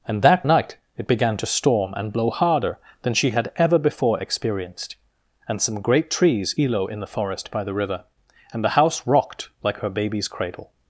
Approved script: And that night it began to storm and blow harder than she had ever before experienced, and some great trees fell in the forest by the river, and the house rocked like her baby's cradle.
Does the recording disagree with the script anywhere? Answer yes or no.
yes